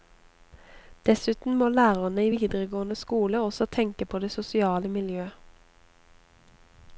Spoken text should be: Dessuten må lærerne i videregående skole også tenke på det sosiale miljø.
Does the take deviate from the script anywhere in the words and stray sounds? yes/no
no